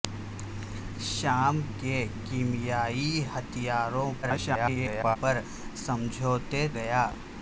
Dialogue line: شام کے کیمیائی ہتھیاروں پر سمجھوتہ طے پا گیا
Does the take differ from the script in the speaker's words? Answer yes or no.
yes